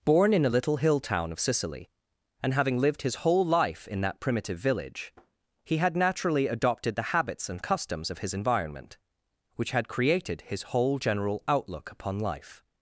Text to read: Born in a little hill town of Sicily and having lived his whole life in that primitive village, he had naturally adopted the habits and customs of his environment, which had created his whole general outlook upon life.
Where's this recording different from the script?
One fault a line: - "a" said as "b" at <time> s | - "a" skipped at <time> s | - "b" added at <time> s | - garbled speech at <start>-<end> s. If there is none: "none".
none